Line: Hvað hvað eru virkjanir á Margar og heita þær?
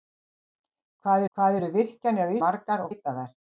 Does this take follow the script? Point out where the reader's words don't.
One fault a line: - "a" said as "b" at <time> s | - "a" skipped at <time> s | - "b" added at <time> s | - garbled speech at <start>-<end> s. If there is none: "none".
none